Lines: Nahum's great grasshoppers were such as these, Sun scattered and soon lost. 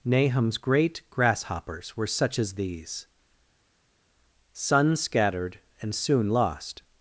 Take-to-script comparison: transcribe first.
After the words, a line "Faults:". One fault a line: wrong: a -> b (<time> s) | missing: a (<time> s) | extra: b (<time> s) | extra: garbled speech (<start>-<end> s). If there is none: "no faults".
Nahum's great grasshoppers were such as these, Sun scattered and soon lost.
Faults:
no faults